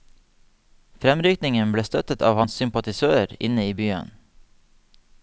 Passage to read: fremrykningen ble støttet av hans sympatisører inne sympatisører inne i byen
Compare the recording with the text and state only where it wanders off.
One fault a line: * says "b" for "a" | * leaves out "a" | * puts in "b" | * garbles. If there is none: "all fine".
* leaves out "sympatisører inne"